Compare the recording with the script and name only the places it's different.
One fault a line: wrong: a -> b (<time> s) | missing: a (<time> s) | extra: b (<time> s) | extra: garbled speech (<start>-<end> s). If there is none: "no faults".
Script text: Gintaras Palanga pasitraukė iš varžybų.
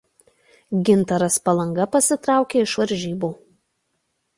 no faults